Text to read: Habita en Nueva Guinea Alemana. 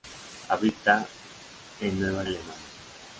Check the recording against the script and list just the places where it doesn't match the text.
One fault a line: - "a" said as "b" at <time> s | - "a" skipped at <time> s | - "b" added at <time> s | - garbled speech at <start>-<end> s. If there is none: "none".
- "Guinea" skipped at 2.2 s